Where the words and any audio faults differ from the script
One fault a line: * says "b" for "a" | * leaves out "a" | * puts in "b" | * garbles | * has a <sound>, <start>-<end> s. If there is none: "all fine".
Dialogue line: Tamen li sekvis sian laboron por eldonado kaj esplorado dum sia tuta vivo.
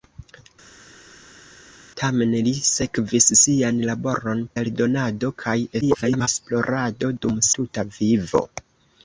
* leaves out "por"
* garbles
* leaves out "sia"